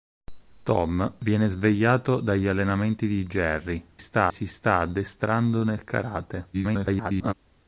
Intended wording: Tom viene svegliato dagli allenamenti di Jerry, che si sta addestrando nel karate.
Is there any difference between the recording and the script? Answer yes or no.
yes